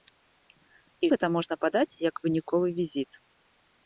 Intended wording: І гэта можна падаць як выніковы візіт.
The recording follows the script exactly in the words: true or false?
true